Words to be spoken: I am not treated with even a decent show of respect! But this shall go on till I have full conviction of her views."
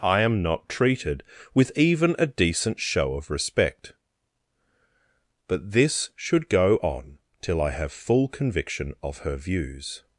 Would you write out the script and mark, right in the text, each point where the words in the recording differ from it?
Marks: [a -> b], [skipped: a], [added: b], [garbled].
I am not treated with even a decent show of respect! But this [shall -> should] go on till I have full conviction of her views."